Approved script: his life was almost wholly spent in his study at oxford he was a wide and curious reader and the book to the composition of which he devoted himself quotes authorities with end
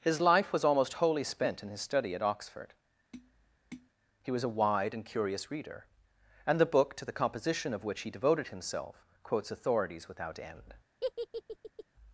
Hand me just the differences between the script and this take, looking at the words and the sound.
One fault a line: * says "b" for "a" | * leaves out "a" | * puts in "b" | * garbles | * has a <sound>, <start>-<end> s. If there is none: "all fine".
* has a tap, 3.1-3.9 s
* says "without" for "with"
* has a laugh, 11.0-11.8 s